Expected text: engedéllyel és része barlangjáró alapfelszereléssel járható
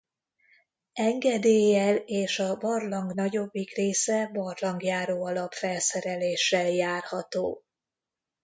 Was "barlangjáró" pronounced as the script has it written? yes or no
yes